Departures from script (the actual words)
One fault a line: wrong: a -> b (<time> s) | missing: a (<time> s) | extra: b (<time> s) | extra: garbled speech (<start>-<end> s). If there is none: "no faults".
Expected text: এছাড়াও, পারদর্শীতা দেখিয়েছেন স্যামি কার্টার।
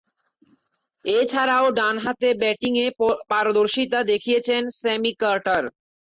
extra: ডানহাতে ব্যাটিংয়ে (1.8 s)